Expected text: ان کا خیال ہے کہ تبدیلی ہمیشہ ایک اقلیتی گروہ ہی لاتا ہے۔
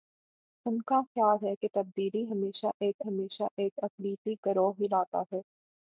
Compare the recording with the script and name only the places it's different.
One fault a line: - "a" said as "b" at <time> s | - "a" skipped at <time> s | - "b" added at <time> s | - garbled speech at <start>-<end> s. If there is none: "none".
- "ہمیشہ ایک" added at 3.0 s